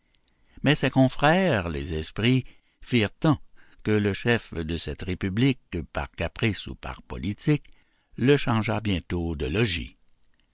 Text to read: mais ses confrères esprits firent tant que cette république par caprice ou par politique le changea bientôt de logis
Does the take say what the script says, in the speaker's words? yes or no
no